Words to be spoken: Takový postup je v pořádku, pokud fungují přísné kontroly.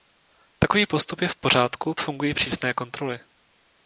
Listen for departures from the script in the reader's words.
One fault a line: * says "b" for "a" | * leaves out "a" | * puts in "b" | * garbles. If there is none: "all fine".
* leaves out "pokud"